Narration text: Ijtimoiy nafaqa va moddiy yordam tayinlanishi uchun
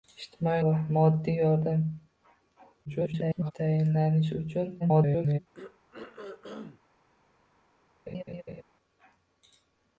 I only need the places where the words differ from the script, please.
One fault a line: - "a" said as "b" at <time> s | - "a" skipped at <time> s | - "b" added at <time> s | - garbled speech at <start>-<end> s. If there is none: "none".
- "nafaqa" skipped at 0.6 s
- garbled speech at 2.9-3.5 s
- garbled speech at 4.8-5.4 s